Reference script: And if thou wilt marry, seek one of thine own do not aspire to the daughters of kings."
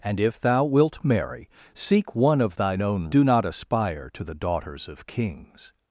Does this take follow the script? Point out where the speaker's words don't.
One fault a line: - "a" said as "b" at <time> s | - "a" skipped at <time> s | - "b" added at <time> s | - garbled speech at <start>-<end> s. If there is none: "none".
none